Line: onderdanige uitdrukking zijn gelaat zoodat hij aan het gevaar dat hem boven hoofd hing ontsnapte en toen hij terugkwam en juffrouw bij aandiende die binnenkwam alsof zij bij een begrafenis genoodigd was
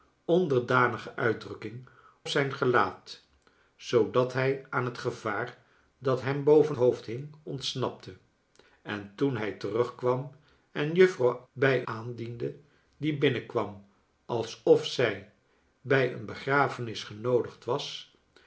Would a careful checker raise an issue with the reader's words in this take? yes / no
no